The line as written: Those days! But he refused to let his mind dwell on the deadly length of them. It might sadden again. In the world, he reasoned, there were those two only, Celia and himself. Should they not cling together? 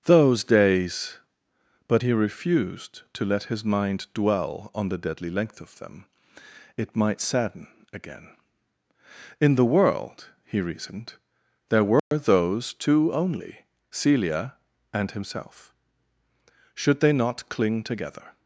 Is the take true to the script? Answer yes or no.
yes